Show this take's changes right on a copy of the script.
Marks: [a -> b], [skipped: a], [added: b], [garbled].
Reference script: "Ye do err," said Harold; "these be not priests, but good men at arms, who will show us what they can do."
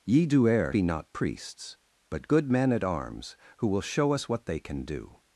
"Ye do err," [skipped: said Harold; "these] be not priests, but good men at arms, who will show us what they can do."